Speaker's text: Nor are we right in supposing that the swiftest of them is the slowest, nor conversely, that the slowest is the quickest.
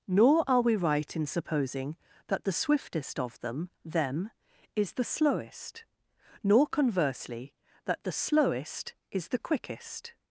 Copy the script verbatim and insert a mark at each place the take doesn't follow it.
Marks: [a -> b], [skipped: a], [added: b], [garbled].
Nor are we right in supposing that the swiftest of them [added: them] is the slowest, nor conversely, that the slowest is the quickest.